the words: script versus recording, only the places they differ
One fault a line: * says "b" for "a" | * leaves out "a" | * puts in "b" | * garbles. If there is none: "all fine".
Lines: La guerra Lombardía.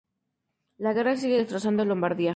* puts in "sigue destrozando"